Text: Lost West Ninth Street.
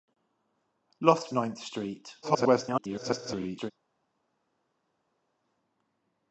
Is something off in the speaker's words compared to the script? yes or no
yes